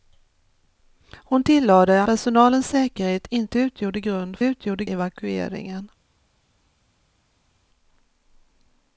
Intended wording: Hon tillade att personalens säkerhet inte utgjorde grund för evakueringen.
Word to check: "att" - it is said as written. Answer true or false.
false